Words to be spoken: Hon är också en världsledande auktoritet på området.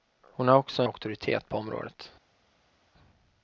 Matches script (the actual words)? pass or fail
fail